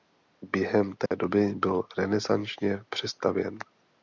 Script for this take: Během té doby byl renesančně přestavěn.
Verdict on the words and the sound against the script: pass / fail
fail